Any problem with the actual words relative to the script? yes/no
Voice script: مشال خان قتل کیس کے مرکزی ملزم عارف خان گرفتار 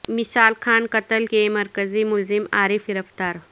yes